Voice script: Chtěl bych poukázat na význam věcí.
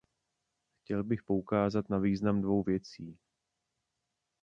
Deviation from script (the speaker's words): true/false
true